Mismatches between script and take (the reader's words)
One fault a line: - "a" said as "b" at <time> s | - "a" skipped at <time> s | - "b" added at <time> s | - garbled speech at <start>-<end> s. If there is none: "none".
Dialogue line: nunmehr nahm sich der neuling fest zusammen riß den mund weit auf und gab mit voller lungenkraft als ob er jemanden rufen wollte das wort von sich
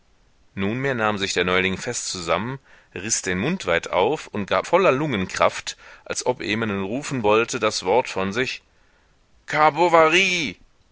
- "mit" skipped at 4.7 s